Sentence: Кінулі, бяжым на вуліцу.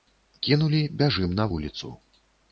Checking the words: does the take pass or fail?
pass